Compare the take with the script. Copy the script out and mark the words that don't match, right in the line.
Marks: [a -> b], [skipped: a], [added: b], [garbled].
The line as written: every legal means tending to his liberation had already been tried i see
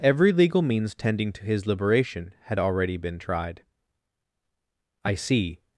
every legal means tending to his liberation had already been tried i see